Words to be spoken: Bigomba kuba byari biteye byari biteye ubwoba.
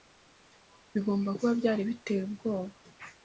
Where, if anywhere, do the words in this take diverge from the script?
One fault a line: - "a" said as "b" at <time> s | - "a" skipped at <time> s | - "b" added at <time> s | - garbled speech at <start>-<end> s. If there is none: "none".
- "byari biteye" skipped at 2.2 s